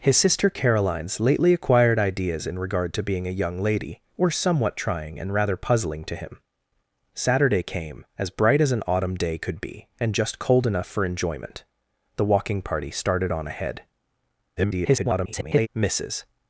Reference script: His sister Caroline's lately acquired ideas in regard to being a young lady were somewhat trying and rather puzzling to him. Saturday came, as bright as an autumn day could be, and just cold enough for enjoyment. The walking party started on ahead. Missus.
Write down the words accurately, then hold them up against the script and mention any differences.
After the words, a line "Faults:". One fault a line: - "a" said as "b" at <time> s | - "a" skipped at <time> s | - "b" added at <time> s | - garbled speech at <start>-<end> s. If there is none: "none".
His sister Caroline's lately acquired ideas in regard to being a young lady were somewhat trying and rather puzzling to him. Saturday came, as bright as an autumn day could be, and just cold enough for enjoyment. The walking party started on ahead. [garbled] Missus.
Faults:
- garbled speech at 14.6-15.7 s